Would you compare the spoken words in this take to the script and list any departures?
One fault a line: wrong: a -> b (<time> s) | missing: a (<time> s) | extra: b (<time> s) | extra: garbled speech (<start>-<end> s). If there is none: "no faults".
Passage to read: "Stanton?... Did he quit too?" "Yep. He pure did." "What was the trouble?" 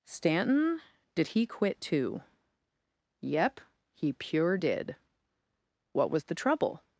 no faults